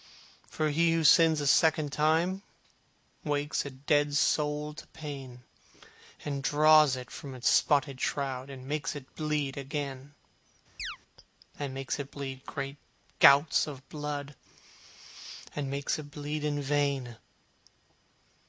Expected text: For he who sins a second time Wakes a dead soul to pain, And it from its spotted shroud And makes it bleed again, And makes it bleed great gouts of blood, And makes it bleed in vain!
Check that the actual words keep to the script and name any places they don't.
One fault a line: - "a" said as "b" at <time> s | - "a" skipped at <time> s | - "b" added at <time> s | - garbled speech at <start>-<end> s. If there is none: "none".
- "draws" added at 6.4 s